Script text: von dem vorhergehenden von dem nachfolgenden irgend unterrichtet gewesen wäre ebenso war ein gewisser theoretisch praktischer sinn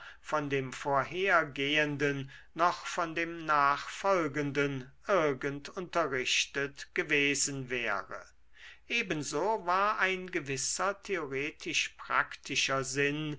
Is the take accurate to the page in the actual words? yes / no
no